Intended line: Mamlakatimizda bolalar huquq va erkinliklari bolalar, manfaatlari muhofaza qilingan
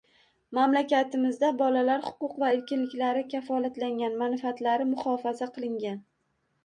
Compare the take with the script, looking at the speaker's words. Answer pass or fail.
fail